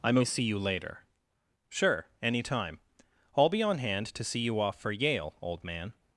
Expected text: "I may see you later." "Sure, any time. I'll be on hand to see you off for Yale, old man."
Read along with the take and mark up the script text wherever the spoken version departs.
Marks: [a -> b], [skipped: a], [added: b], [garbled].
"I may see you later." "Sure, any time. I'll be on hand to see you off for Yale, old man."